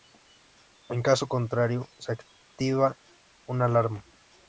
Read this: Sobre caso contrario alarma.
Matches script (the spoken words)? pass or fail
fail